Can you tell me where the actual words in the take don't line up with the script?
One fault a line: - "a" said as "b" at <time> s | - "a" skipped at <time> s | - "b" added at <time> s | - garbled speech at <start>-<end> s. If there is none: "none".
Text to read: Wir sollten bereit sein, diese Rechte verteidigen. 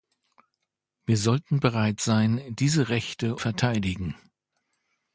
none